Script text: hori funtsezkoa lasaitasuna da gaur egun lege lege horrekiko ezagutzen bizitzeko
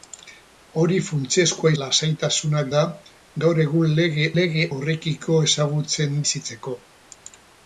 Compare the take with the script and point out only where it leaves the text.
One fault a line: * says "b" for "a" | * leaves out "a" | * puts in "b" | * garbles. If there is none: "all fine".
all fine